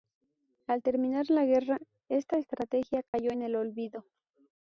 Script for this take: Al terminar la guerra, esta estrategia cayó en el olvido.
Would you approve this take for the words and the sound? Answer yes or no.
no